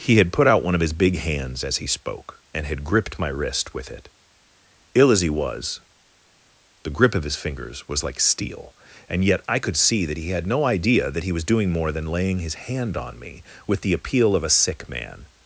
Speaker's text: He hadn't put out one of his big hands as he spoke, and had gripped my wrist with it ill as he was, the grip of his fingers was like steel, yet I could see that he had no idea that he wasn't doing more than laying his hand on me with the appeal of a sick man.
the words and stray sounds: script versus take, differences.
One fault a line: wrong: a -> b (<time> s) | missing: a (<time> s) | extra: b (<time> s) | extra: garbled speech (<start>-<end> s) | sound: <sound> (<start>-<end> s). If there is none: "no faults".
wrong: hadn't -> had (0.2 s)
extra: and (9.1 s)
wrong: wasn't -> was (11.3 s)